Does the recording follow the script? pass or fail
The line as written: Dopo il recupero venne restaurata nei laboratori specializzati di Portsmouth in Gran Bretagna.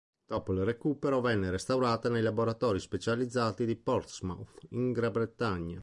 pass